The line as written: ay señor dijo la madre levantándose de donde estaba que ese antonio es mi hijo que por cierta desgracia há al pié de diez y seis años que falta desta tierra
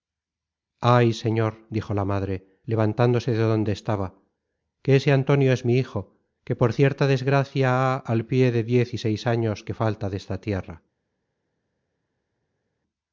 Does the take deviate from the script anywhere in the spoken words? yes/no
no